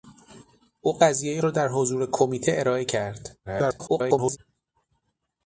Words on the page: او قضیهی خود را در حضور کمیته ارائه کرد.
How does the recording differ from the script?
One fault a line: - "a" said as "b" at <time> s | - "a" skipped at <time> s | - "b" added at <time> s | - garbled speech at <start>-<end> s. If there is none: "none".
- "خود" skipped at 1.4 s
- garbled speech at 3.5-4.4 s